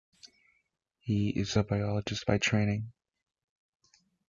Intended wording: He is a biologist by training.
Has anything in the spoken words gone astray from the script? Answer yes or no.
no